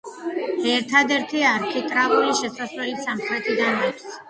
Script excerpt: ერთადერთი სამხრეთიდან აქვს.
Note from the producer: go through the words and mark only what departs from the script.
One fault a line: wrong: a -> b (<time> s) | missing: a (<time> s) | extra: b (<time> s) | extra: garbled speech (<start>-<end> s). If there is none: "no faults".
extra: არქიტრავული შესასვლელი (1.5 s)